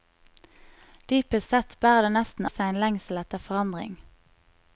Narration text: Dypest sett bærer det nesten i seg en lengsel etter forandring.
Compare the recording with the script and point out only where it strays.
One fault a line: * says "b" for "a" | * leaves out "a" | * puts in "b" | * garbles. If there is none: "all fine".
all fine